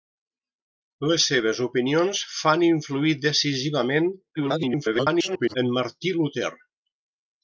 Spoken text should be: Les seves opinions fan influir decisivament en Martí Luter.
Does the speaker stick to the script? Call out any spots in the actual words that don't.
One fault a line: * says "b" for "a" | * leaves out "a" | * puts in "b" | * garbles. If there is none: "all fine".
* garbles